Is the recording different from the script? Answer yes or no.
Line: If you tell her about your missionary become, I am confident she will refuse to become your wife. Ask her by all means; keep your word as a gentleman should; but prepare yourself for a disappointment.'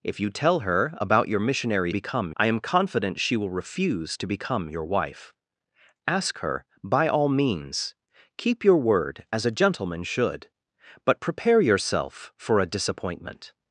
no